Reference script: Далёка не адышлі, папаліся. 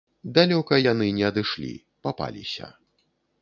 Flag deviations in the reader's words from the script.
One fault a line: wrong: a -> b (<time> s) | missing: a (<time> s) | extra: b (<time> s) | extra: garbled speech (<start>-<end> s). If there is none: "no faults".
extra: яны (0.9 s)